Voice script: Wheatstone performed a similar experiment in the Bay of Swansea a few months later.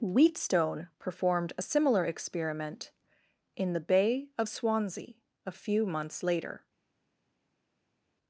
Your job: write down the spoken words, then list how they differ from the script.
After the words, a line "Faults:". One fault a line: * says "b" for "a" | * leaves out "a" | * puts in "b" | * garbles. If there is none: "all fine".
Wheatstone performed a similar experiment in the Bay of Swansea a few months later.
Faults:
all fine